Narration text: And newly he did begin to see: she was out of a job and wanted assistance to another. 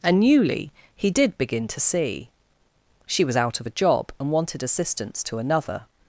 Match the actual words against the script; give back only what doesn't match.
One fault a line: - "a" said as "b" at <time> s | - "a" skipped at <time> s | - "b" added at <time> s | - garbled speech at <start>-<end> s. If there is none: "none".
none